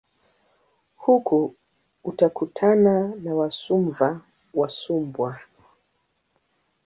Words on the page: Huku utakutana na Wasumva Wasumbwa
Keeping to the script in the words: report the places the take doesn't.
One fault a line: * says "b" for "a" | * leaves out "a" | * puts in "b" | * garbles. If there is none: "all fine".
all fine